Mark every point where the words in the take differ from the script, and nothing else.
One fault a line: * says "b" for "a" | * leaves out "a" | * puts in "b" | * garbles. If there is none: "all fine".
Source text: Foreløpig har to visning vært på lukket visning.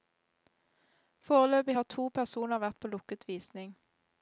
* says "personer" for "visning"